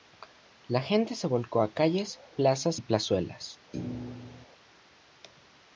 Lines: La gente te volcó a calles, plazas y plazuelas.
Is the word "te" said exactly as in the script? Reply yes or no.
no